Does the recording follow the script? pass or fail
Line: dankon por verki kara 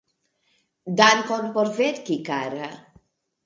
pass